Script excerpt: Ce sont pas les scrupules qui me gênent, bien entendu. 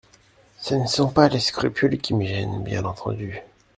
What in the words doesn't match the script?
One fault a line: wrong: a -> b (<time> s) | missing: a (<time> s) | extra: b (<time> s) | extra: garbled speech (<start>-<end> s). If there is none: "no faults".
extra: ne (0.7 s)